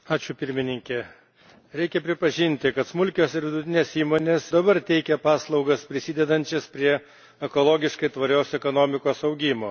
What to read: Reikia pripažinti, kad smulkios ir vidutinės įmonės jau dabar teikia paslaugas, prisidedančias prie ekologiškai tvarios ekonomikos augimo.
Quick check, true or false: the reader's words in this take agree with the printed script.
false